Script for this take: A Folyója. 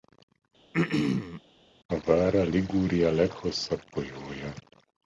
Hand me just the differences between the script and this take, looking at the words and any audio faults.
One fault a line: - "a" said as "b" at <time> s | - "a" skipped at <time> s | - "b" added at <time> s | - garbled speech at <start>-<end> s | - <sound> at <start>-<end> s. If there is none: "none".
- throat clearing at 0.7-1.4 s
- "Vara Liguria leghosszabb" added at 2.0 s